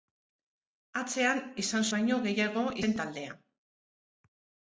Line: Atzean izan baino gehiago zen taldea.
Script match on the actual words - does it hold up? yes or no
yes